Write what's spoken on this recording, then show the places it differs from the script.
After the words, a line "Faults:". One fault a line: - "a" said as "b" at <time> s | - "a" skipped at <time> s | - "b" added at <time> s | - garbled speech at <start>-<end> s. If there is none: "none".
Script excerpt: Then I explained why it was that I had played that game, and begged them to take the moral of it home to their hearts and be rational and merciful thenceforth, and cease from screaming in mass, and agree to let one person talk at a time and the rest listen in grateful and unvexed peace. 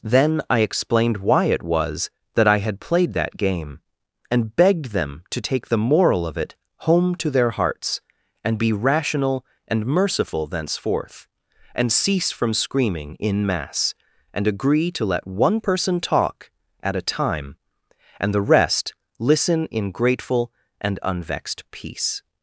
Then I explained why it was that I had played that game, and begged them to take the moral of it home to their hearts and be rational and merciful thenceforth, and cease from screaming in mass, and agree to let one person talk at a time and the rest listen in grateful and unvexed peace.
Faults:
none